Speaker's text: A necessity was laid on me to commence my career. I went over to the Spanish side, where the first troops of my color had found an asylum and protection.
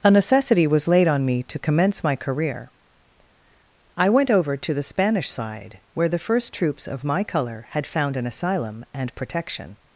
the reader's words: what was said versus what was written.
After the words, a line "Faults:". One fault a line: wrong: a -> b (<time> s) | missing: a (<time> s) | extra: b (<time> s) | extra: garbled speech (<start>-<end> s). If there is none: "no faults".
A necessity was laid on me to commence my career. I went over to the Spanish side, where the first troops of my color had found an asylum and protection.
Faults:
no faults